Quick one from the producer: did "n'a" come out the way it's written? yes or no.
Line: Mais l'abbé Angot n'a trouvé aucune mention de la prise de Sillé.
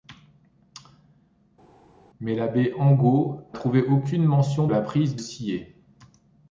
no